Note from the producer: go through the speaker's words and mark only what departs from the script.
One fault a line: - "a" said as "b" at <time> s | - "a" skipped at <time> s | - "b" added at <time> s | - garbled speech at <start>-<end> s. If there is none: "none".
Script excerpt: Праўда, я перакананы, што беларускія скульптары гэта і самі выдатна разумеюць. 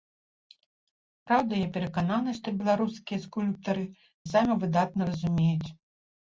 - "гэта" skipped at 3.9 s